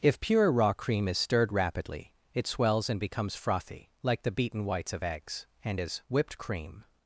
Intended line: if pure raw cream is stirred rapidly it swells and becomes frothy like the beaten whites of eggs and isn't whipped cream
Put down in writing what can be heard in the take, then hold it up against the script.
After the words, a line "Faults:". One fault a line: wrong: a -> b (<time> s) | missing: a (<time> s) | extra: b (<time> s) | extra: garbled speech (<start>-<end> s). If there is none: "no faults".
if pure raw cream is stirred rapidly it swells and becomes frothy like the beaten whites of eggs and is whipped cream
Faults:
wrong: isn't -> is (5.8 s)